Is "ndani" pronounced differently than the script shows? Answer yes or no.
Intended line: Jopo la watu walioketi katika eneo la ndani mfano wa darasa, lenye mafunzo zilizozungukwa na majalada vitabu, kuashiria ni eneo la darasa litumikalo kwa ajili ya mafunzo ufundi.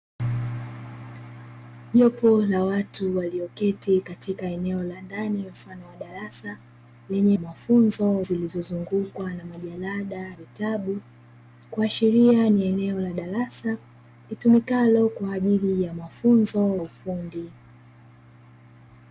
no